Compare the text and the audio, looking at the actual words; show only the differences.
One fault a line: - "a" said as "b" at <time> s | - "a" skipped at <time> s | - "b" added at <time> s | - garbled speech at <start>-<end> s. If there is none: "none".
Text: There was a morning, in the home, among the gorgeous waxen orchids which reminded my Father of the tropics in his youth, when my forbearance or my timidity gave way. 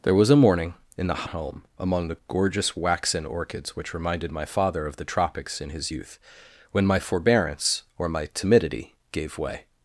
none